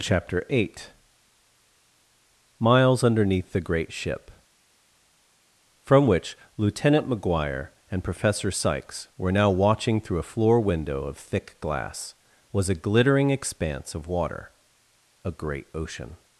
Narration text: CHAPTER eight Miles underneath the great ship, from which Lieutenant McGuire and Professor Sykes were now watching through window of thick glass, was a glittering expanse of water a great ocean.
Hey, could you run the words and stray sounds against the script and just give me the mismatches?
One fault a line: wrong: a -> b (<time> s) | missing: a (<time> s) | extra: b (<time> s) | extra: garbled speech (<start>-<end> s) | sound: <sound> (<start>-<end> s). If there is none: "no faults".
extra: a floor (10.2 s)